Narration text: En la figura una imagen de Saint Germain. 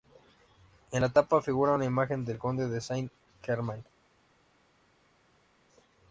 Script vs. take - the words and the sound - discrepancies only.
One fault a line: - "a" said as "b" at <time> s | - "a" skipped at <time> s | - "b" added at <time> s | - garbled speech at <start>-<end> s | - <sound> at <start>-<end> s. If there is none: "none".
- "tapa" added at 1.1 s
- "del Conde" added at 2.2 s